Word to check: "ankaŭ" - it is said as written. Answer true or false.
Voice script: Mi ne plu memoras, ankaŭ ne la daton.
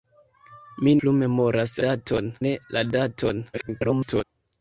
false